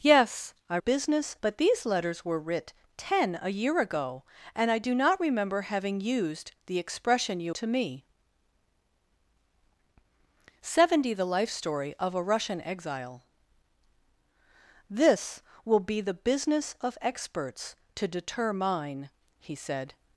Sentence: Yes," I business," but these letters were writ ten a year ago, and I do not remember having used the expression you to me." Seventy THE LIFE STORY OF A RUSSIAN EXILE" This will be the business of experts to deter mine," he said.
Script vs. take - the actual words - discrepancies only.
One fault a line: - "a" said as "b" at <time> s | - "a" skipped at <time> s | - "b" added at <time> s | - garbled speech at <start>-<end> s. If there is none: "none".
none